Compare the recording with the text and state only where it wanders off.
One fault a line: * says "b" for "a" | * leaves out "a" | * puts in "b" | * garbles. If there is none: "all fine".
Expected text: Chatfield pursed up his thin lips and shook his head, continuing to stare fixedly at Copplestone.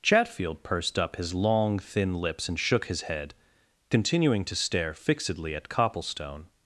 * puts in "long"